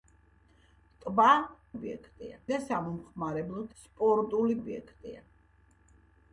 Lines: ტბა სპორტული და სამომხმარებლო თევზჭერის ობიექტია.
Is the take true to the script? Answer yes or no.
no